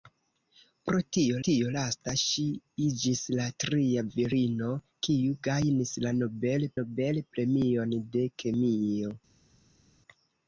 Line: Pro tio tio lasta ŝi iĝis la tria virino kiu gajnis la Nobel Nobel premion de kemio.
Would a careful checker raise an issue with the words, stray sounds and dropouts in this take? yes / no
no